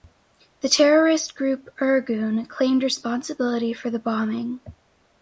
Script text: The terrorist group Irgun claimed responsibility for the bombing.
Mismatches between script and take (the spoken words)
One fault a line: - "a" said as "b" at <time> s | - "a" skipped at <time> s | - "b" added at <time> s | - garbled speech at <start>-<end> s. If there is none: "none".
none